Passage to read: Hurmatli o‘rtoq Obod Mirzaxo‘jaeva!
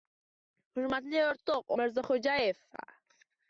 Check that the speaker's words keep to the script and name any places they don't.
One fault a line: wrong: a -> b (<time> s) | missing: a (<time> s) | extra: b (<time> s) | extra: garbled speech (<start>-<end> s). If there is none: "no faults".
missing: Obod (1.8 s)